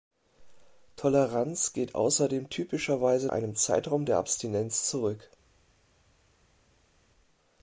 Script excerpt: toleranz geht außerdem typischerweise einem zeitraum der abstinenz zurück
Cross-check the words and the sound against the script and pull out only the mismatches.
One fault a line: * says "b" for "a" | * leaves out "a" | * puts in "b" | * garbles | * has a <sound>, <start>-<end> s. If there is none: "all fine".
all fine